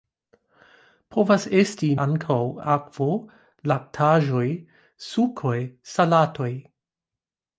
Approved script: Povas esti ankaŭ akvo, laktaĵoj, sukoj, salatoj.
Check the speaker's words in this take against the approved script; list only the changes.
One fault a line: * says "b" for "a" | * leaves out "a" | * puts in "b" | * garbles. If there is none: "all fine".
all fine